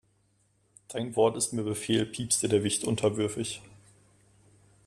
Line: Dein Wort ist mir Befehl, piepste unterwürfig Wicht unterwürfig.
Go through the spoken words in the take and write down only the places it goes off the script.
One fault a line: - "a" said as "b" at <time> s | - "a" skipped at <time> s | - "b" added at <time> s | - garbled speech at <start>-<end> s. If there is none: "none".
- "unterwürfig" said as "der" at 2.5 s